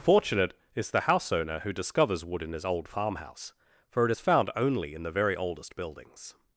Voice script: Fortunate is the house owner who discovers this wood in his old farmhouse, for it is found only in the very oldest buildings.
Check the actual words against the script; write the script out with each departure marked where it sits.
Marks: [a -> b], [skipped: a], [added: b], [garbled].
Fortunate is the house owner who discovers [skipped: this] wood in his old farmhouse, for it is found only in the very oldest buildings.